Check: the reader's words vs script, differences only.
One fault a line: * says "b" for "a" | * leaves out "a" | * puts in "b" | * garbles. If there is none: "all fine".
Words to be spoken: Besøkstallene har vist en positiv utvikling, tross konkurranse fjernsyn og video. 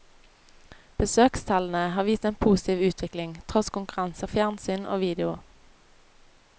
all fine